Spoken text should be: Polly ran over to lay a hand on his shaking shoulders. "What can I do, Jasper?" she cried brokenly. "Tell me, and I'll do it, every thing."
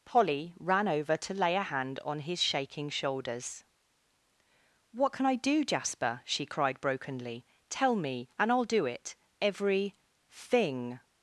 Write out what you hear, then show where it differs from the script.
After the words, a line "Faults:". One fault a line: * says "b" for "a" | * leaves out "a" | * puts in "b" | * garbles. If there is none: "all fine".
Polly ran over to lay a hand on his shaking shoulders. "What can I do, Jasper?" she cried brokenly. "Tell me, and I'll do it, every thing."
Faults:
all fine